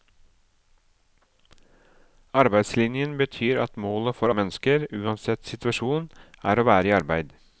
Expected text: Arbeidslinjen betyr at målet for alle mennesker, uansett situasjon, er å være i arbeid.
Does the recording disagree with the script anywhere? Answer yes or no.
yes